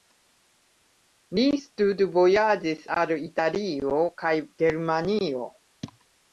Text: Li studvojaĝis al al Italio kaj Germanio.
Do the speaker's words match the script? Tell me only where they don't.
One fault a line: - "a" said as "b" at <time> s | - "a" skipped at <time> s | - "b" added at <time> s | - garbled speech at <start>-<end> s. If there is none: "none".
- "al" skipped at 3.2 s